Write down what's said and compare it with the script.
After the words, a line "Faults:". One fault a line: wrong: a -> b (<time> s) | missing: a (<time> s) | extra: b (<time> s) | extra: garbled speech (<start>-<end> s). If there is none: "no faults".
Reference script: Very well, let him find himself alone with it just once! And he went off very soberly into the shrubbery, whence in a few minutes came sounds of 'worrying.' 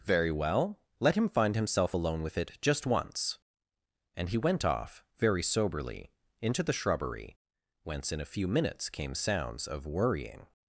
Very well, let him find himself alone with it just once! And he went off very soberly into the shrubbery, whence in a few minutes came sounds of 'worrying.'
Faults:
no faults